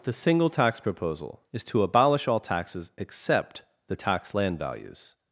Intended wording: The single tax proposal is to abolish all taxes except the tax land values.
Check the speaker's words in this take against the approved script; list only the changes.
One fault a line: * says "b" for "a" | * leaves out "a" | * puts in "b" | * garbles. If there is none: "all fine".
all fine